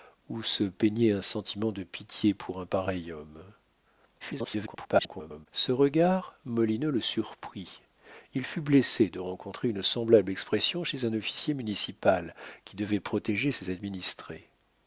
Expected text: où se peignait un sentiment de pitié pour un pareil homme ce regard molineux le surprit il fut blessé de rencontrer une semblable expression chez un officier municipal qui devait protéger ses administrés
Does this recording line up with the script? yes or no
no